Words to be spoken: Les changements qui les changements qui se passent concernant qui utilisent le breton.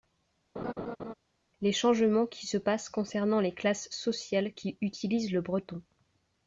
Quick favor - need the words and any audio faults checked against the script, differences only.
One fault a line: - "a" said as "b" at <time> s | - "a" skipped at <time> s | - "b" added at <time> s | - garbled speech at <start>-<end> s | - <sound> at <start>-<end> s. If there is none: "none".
- laugh at 0.6-1.1 s
- "les changements qui se passent concernant" said as "se passent concernant les classes sociales" at 2.5 s